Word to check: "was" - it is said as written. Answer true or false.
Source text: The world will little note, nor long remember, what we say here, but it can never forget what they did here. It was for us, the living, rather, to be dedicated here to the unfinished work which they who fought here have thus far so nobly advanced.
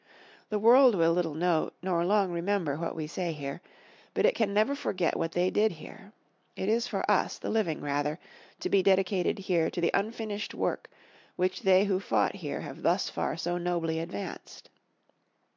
false